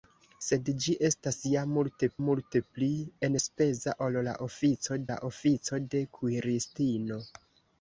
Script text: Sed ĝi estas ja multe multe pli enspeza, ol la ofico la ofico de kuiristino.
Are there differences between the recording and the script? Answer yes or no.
no